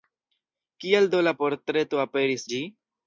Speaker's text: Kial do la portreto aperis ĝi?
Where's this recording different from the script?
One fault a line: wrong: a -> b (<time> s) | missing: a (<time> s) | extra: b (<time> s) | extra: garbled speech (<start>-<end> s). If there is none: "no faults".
no faults